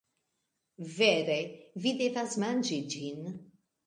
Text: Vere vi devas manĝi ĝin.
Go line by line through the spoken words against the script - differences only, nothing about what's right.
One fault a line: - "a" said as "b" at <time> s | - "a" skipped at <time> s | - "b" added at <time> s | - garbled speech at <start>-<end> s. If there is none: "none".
none